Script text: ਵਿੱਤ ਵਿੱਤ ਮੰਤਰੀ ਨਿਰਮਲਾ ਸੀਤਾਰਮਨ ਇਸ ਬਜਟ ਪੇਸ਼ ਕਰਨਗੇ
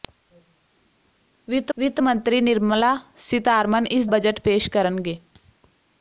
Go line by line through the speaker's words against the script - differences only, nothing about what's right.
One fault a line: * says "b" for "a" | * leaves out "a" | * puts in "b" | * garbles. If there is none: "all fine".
all fine